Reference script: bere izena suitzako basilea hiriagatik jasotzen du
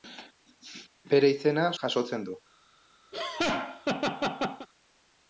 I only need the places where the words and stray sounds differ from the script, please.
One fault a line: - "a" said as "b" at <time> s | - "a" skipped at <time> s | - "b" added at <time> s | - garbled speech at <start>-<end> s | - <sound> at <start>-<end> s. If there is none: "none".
- "suitzako basilea hiriagatik" skipped at 1.7 s
- laugh at 3.1-4.7 s